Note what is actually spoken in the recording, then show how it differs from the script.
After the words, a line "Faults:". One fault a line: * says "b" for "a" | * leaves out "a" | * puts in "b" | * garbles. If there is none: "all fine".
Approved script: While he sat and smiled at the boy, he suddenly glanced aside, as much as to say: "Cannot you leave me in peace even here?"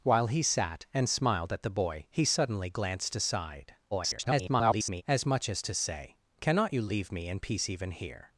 While he sat and smiled at the boy, he suddenly glanced aside, [garbled] as much as to say: "Cannot you leave me in peace even here?"
Faults:
* garbles